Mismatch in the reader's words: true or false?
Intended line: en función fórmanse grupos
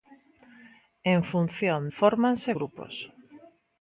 false